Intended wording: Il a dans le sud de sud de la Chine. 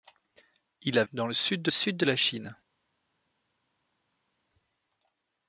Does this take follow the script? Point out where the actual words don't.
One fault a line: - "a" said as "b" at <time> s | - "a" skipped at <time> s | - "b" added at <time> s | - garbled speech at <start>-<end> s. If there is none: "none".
none